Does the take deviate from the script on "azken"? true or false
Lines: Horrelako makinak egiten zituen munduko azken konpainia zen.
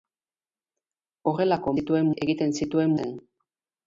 true